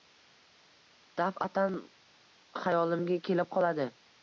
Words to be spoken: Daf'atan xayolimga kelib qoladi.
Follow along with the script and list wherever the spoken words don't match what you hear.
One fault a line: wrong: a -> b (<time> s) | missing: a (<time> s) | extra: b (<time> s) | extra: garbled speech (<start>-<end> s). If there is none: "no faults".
no faults